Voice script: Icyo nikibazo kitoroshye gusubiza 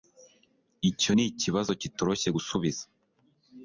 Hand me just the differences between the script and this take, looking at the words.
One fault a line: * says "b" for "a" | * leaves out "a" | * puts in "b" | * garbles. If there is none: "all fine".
all fine